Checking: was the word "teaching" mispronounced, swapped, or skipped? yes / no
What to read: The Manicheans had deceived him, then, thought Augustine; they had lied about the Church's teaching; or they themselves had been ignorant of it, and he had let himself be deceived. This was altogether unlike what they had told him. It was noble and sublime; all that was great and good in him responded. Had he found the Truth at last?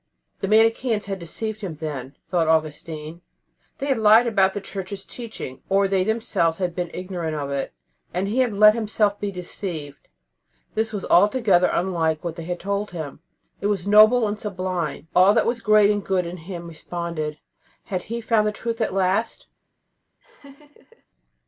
no